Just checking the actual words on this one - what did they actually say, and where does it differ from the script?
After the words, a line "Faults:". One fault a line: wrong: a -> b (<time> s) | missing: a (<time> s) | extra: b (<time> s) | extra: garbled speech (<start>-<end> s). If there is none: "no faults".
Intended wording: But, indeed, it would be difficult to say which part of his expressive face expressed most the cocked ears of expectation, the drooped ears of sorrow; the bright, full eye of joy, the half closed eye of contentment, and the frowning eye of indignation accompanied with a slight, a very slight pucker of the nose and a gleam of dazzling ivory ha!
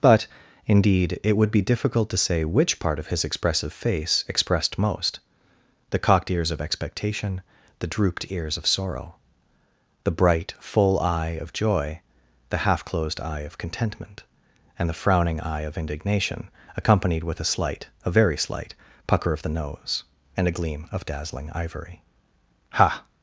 But, indeed, it would be difficult to say which part of his expressive face expressed most the cocked ears of expectation, the drooped ears of sorrow; the bright, full eye of joy, the half closed eye of contentment, and the frowning eye of indignation accompanied with a slight, a very slight pucker of the nose and a gleam of dazzling ivory ha!
Faults:
no faults